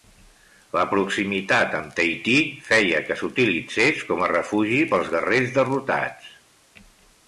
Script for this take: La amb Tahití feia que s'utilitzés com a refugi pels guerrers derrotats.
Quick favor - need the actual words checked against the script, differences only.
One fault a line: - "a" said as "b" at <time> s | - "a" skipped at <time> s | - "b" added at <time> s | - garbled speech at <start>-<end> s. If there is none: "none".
- "proximitat" added at 0.9 s